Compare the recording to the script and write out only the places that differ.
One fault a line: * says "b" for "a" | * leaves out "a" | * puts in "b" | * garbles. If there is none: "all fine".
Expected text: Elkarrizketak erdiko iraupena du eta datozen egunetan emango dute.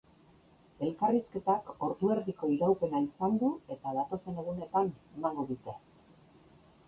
* puts in "ordu"
* puts in "izan"